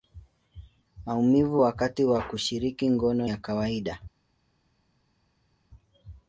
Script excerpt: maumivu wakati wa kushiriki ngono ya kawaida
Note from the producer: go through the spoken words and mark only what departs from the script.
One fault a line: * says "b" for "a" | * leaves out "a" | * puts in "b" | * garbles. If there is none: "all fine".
all fine